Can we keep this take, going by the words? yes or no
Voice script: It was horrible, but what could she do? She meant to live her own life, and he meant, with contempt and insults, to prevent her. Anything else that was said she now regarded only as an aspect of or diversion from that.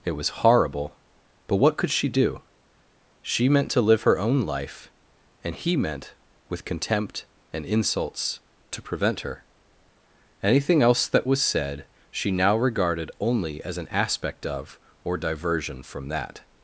yes